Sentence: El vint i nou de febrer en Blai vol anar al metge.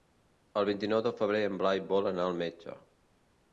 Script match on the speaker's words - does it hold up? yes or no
yes